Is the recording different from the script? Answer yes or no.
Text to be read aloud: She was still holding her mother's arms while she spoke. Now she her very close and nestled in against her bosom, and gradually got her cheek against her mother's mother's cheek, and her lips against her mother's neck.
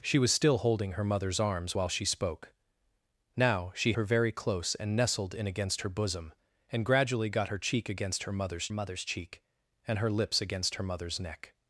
no